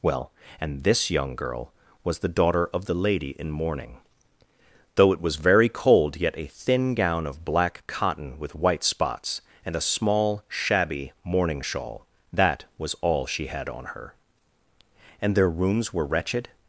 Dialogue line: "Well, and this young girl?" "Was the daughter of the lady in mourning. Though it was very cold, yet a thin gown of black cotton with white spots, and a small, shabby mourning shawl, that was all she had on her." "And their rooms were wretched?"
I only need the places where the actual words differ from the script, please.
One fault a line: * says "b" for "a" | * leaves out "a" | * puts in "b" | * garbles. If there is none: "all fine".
all fine